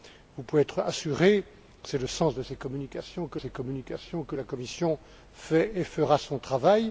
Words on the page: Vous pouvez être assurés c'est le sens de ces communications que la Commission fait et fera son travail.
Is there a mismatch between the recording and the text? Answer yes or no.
yes